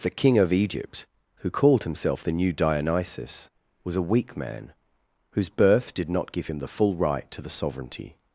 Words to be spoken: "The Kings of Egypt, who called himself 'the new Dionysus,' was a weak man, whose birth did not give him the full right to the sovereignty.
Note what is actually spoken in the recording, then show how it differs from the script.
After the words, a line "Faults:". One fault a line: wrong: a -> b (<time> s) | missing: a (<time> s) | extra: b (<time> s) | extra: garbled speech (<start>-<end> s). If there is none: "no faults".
"The King of Egypt, who called himself 'the new Dionysus,' was a weak man, whose birth did not give him the full right to the sovereignty.
Faults:
wrong: Kings -> King (0.1 s)